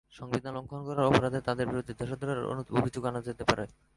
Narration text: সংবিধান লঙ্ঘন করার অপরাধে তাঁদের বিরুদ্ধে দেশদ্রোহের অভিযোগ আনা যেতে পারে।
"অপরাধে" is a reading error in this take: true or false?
false